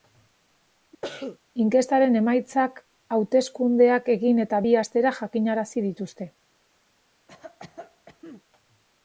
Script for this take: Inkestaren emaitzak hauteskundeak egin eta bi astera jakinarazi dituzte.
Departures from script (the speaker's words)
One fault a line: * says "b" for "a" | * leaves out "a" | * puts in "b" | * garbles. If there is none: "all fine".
all fine